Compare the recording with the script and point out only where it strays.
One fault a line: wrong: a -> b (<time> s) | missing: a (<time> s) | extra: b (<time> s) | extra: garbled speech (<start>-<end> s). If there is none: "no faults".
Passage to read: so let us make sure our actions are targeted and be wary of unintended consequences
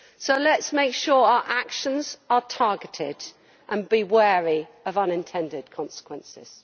no faults